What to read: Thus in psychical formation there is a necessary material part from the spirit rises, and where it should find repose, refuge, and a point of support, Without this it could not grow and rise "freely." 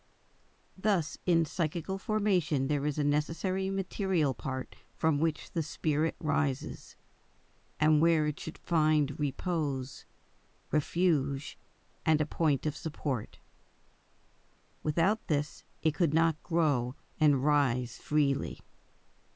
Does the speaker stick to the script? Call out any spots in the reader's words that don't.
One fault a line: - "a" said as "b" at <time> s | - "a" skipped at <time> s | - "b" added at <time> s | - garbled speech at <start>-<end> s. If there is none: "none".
- "which" added at 5.2 s